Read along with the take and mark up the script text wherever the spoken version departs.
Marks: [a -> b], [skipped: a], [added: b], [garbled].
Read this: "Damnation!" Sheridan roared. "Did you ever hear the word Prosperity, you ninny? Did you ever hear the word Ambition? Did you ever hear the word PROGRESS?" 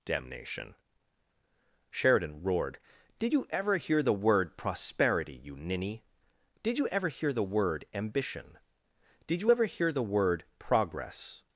"Damnation!" Sheridan roared. "Did you ever hear the word Prosperity, you ninny? Did you ever hear the word Ambition? Did you ever hear the word PROGRESS?"